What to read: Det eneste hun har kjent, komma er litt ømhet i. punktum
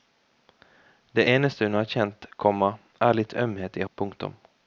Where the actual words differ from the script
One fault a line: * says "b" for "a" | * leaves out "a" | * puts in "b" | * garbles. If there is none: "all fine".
all fine